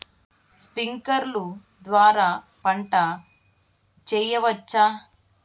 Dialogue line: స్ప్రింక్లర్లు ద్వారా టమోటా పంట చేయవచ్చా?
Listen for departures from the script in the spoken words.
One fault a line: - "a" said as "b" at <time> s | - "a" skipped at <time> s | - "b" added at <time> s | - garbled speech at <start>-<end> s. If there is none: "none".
- "టమోటా" skipped at 2.3 s